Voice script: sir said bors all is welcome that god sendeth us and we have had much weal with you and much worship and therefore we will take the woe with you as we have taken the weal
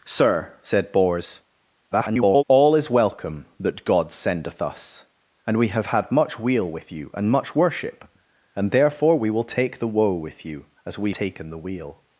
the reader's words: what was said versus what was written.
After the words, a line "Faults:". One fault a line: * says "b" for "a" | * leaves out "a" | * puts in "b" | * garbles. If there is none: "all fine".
sir said bors [garbled] all is welcome that god sendeth us and we have had much weal with you and much worship and therefore we will take the woe with you as we taken the weal
Faults:
* garbles
* leaves out "have"